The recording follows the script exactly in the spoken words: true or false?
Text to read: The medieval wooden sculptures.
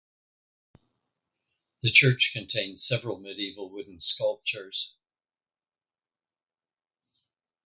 false